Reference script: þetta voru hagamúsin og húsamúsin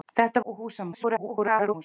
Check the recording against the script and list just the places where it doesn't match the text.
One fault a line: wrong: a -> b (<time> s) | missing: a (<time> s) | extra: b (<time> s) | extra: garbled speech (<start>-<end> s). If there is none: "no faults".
missing: voru hagamúsin (0.4 s)
extra: garbled speech (0.9-1.7 s)